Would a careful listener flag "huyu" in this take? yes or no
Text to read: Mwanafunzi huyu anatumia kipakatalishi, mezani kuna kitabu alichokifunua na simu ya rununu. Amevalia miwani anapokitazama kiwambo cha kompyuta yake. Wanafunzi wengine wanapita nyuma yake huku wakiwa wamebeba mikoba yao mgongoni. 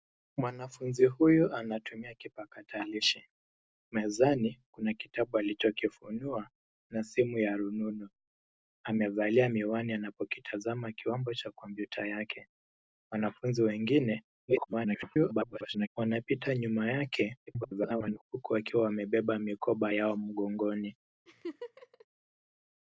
no